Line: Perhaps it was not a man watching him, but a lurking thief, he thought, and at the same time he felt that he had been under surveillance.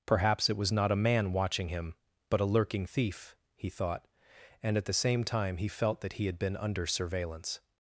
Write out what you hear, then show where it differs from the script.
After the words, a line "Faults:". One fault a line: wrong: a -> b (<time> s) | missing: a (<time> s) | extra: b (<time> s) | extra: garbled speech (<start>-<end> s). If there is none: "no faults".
Perhaps it was not a man watching him, but a lurking thief, he thought, and at the same time he felt that he had been under surveillance.
Faults:
no faults